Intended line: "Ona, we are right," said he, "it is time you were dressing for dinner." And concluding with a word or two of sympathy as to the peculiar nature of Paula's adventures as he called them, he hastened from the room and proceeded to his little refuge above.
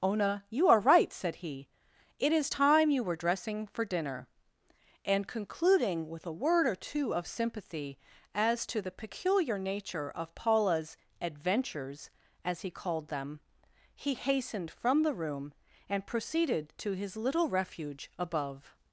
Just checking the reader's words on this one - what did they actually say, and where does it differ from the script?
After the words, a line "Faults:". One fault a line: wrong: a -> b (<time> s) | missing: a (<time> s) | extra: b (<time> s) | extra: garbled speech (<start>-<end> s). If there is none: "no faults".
"Ona, you are right," said he, "it is time you were dressing for dinner." And concluding with a word or two of sympathy as to the peculiar nature of Paula's adventures as he called them, he hastened from the room and proceeded to his little refuge above.
Faults:
wrong: we -> you (0.5 s)